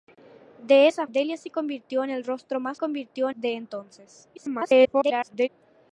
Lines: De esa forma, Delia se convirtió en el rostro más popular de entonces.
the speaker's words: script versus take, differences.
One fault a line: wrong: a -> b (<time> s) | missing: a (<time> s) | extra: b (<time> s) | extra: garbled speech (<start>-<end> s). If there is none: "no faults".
missing: forma (1.1 s)
wrong: popular -> convirtió (2.8 s)
extra: garbled speech (4.3-5.5 s)